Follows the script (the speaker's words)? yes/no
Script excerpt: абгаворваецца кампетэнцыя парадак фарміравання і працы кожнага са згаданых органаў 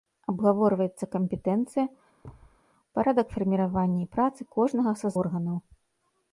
no